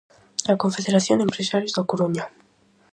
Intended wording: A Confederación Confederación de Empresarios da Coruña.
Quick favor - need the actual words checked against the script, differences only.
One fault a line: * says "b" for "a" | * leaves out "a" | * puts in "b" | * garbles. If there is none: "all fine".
* leaves out "Confederación"